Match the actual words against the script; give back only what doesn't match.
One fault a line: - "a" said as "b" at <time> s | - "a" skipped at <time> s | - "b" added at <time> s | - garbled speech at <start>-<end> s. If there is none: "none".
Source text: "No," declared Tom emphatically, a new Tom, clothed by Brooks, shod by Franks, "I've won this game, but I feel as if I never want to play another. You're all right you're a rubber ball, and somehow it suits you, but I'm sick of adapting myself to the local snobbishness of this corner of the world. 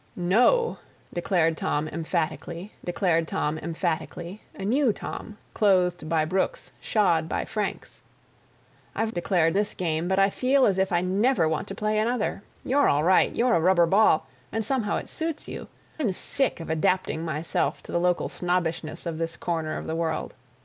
- "declared Tom emphatically" added at 2.8 s
- "won" said as "declared" at 9.1 s
- "but" skipped at 15.7 s